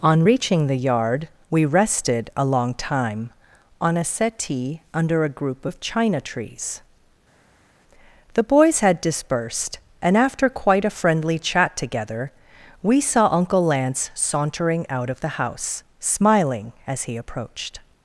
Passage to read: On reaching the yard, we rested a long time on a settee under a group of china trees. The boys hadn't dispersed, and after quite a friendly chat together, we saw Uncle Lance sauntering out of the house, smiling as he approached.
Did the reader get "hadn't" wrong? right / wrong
wrong